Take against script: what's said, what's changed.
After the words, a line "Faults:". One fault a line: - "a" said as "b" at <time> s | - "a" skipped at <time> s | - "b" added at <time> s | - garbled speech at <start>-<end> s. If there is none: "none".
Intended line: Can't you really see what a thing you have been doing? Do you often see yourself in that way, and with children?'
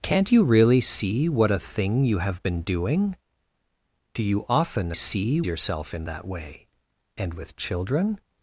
Can't you really see what a thing you have been doing? Do you often see yourself in that way, and with children?'
Faults:
none